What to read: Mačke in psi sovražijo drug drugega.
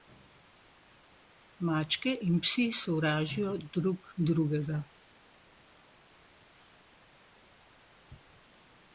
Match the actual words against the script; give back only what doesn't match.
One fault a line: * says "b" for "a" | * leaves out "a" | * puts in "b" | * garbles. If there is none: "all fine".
all fine